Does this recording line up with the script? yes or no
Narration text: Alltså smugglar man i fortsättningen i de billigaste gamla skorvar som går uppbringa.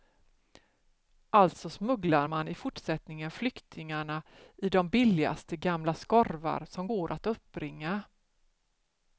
no